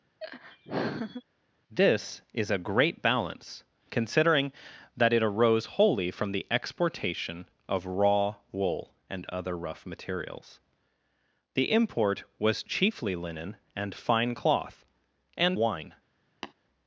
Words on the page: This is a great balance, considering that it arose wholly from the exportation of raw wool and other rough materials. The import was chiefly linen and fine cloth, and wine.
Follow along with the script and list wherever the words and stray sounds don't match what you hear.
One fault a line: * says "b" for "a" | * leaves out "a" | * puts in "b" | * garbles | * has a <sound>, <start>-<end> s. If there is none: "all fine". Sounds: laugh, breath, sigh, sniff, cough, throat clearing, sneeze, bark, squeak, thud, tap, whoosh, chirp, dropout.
* has a laugh, 0.2-1.2 s
* has a tap, 16.4-16.5 s